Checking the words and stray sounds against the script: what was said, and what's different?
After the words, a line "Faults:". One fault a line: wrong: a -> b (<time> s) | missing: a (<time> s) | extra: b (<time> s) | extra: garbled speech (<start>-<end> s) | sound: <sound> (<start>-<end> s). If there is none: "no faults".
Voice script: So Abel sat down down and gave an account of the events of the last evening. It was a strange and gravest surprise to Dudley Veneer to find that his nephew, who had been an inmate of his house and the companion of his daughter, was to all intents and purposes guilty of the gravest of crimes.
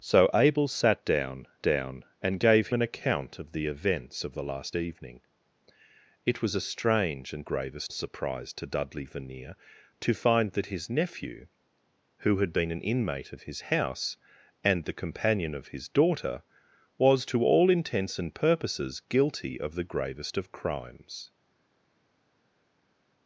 So Abel sat down down and gave an account of the events of the last evening. It was a strange and gravest surprise to Dudley Veneer to find that his nephew, who had been an inmate of his house and the companion of his daughter, was to all intents and purposes guilty of the gravest of crimes.
Faults:
no faults